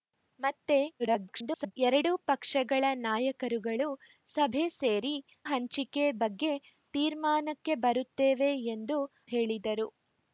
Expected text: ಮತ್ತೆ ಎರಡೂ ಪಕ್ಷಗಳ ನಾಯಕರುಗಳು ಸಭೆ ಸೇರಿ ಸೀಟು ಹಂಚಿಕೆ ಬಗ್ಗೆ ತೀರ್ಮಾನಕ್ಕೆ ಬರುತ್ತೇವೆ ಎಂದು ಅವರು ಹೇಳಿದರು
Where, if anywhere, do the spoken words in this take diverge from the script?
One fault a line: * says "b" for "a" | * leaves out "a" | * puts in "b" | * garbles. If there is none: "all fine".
* garbles
* leaves out "ಸೀಟು"
* leaves out "ಅವರು"